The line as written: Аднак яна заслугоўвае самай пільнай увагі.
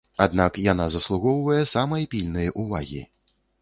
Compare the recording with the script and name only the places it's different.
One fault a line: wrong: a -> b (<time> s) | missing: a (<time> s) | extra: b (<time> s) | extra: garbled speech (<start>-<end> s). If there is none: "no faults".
no faults